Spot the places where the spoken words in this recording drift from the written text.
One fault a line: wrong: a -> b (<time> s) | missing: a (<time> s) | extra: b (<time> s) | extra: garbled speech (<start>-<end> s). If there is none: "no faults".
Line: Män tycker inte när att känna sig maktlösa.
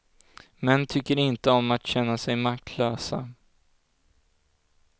wrong: när -> om (1.5 s)